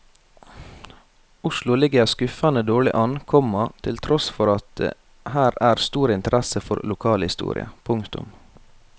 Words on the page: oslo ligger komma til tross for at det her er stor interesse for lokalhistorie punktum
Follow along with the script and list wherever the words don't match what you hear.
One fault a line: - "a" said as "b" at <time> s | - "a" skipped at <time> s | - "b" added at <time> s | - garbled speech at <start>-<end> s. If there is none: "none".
- "skuffende dårlig an" added at 2.0 s